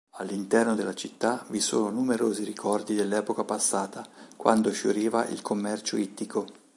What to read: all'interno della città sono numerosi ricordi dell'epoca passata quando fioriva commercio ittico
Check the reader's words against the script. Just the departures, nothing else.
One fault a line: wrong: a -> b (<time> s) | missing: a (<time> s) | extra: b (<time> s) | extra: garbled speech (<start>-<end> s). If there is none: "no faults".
extra: vi (1.5 s)
extra: il (5.3 s)